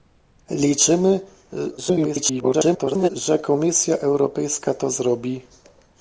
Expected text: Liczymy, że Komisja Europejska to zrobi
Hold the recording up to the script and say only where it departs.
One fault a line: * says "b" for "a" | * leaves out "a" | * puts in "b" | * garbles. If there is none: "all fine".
* garbles